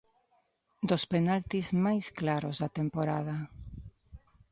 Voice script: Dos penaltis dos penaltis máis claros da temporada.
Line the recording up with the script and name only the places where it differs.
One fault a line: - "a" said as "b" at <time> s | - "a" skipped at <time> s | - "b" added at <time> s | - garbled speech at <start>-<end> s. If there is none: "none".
- "dos penaltis" skipped at 1.7 s